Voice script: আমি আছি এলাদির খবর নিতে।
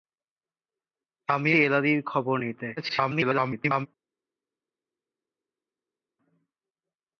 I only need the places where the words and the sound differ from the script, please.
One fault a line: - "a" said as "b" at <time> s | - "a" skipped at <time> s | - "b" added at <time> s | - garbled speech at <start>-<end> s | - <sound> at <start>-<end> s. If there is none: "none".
- "আছি" skipped at 1.5 s
- garbled speech at 2.8-3.9 s